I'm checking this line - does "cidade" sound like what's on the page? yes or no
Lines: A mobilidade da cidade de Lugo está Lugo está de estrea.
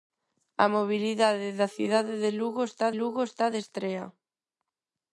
yes